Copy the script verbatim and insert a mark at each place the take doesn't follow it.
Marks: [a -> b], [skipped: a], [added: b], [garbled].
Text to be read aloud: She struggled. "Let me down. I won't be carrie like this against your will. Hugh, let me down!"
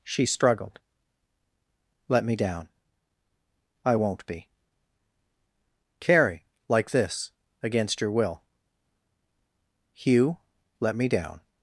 She struggled. "Let me down. I won't be carrie like this against your will. Hugh, let me down!"